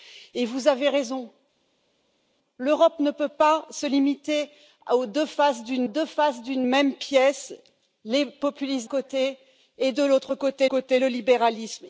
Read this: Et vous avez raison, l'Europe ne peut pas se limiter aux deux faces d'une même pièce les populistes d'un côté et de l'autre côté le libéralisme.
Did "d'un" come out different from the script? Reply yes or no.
yes